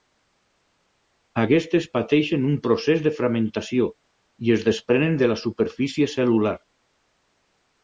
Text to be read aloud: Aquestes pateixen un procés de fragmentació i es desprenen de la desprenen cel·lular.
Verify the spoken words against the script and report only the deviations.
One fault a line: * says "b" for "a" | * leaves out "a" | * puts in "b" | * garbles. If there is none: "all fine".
* says "superfície" for "desprenen"